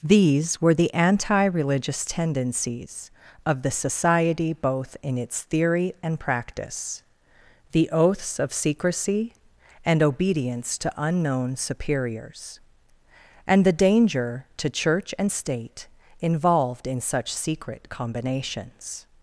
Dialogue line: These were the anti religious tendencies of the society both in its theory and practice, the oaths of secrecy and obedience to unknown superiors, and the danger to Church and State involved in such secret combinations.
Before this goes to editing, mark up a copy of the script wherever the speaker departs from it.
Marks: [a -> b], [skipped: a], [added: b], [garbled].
These were the anti religious tendencies of the society both in its theory and practice, the oaths of secrecy and obedience to unknown superiors, and the danger to Church and State involved in such secret combinations.